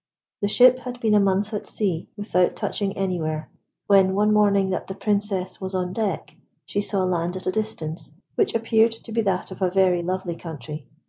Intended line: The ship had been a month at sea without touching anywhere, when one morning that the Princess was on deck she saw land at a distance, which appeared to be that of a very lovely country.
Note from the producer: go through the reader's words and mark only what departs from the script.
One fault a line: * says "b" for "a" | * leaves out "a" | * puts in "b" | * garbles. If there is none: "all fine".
all fine